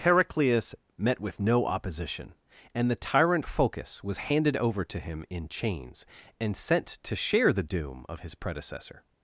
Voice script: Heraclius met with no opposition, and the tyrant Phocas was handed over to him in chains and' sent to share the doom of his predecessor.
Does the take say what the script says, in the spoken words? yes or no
yes